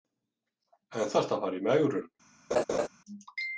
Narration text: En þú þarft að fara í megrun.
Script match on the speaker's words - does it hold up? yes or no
no